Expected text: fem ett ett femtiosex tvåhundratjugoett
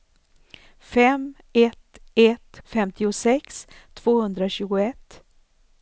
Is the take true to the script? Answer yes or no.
yes